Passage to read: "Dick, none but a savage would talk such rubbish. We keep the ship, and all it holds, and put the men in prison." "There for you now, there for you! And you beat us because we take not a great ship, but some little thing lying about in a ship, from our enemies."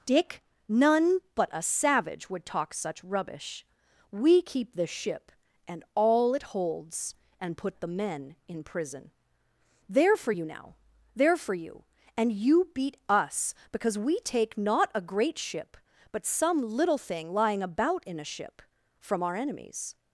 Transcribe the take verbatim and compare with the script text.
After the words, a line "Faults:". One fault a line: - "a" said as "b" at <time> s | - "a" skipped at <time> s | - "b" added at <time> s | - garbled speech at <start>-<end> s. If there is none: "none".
"Dick, none but a savage would talk such rubbish. We keep the ship, and all it holds, and put the men in prison." "There for you now, there for you! And you beat us because we take not a great ship, but some little thing lying about in a ship, from our enemies."
Faults:
none